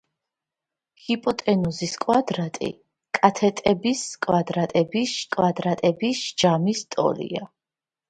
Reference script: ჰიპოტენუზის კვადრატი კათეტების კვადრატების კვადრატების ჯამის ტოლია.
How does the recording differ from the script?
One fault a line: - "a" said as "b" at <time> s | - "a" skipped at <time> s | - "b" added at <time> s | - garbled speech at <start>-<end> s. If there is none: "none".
none